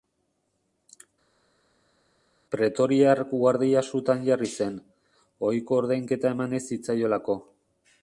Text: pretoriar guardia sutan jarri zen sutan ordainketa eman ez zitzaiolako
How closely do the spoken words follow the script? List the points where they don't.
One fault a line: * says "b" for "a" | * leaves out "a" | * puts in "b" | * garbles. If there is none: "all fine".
* says "ohiko" for "sutan"